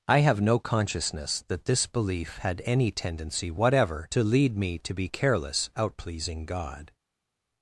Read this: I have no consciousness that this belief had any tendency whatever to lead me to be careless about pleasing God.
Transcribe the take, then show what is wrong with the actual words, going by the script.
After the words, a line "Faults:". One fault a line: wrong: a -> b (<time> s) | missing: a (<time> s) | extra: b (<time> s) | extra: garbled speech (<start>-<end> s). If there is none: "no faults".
I have no consciousness that this belief had any tendency whatever to lead me to be careless out pleasing God.
Faults:
wrong: about -> out (5.8 s)